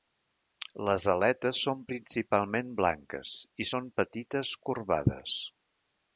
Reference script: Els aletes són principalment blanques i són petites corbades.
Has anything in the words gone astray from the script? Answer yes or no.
yes